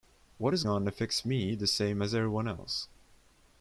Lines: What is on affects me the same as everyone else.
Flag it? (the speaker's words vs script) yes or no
no